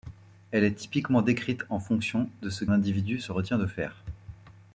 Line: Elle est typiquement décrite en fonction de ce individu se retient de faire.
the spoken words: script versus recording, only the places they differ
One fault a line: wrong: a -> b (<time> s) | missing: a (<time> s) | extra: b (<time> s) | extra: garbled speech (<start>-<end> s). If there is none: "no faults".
no faults